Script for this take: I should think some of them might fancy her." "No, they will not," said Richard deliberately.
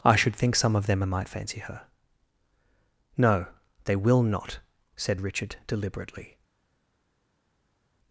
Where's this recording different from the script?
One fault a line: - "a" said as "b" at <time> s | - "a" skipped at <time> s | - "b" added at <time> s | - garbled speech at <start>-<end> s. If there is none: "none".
none